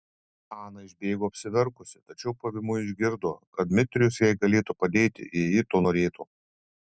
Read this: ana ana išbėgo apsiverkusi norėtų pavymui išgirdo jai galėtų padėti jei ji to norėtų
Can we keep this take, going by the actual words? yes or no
no